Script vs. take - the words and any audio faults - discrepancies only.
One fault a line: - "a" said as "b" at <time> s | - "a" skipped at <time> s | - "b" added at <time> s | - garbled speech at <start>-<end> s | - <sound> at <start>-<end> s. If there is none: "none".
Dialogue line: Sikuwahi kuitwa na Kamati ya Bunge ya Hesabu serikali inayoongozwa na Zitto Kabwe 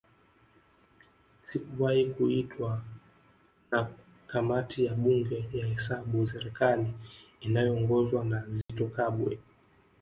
- dropout at 8.6-8.7 s